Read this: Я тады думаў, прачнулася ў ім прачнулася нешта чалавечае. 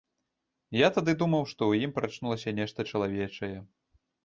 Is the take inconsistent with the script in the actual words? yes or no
yes